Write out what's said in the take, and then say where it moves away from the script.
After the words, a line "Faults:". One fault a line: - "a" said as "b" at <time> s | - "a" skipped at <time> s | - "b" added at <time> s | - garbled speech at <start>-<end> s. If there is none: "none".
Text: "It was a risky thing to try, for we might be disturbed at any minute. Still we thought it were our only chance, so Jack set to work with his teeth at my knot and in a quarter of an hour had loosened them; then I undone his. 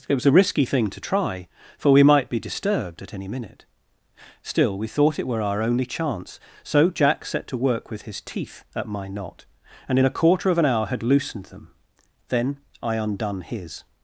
"It was a risky thing to try, for we might be disturbed at any minute. Still we thought it were our only chance, so Jack set to work with his teeth at my knot and in a quarter of an hour had loosened them; then I undone his.
Faults:
none